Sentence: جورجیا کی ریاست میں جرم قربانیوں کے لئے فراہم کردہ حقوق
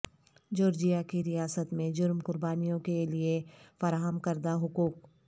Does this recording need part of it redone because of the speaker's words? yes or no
no